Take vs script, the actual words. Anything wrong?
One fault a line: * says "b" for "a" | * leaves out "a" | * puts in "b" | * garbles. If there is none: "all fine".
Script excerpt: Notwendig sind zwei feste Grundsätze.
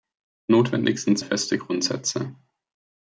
* leaves out "zwei"